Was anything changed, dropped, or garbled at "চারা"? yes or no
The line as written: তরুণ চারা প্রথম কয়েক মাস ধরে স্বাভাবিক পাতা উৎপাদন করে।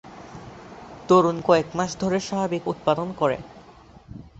yes